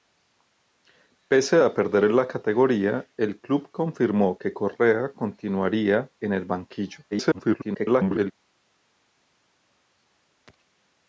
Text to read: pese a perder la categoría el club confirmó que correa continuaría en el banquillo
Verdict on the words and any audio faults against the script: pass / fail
fail